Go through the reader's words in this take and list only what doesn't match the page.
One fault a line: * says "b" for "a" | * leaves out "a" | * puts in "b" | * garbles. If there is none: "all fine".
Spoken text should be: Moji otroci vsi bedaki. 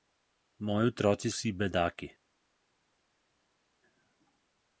all fine